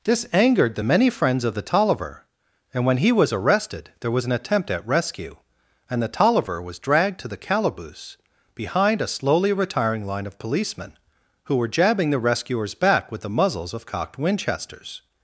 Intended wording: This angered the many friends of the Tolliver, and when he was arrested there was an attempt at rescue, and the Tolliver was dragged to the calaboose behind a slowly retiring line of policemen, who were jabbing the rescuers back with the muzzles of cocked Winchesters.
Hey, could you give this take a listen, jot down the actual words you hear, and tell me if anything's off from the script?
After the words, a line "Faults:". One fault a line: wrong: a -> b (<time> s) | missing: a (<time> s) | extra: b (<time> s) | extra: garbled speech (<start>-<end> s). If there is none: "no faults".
This angered the many friends of the Tolliver, and when he was arrested there was an attempt at rescue, and the Tolliver was dragged to the calaboose behind a slowly retiring line of policemen, who were jabbing the rescuers back with the muzzles of cocked Winchesters.
Faults:
no faults